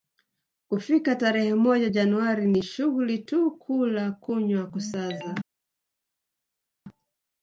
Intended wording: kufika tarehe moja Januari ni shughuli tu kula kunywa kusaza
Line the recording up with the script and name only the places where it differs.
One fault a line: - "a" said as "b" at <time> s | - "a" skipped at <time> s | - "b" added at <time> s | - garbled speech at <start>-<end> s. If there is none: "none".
none